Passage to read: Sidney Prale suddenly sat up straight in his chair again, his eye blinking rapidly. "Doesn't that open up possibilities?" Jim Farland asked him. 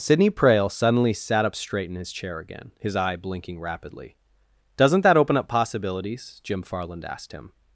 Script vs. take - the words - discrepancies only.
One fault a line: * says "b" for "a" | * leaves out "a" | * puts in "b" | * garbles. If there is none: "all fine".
all fine